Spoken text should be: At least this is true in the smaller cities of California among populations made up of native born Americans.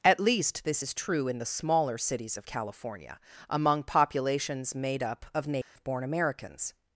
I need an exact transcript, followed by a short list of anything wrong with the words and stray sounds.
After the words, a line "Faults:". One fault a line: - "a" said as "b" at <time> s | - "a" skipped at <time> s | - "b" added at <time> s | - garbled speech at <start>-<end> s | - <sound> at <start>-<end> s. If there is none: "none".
At least this is true in the smaller cities of California among populations made up of native born Americans.
Faults:
- dropout at 5.6-5.8 s